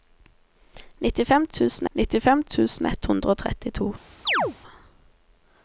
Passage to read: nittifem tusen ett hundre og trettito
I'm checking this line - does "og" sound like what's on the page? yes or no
yes